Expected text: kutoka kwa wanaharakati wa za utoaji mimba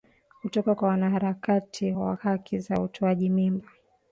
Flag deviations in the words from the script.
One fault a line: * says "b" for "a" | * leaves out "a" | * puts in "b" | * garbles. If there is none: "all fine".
* puts in "haki"